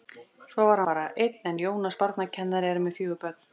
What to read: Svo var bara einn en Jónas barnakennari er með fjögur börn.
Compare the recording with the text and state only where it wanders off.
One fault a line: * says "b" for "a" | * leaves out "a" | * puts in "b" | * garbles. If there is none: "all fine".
all fine